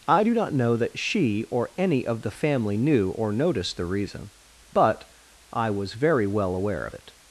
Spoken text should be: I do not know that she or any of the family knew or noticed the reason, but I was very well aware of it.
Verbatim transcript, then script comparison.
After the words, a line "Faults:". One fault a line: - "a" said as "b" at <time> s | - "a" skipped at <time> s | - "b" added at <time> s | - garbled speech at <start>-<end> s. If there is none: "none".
I do not know that she or any of the family knew or noticed the reason, but I was very well aware of it.
Faults:
none